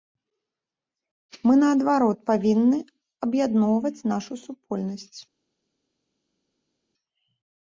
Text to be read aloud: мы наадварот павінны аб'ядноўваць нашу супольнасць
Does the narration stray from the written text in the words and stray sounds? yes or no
no